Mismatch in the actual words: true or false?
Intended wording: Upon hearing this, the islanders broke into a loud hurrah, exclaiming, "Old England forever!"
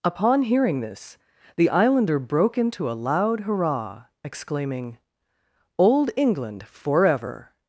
true